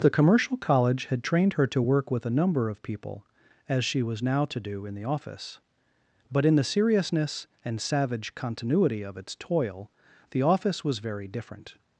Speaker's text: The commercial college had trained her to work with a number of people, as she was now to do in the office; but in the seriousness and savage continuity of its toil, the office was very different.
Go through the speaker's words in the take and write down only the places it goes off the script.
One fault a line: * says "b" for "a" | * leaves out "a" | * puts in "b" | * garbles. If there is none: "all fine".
all fine